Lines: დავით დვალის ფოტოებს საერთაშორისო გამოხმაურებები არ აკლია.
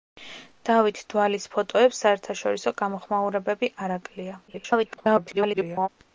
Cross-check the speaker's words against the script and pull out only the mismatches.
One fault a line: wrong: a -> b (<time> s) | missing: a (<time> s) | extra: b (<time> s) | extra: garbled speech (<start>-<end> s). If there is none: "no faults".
extra: garbled speech (4.5-5.9 s)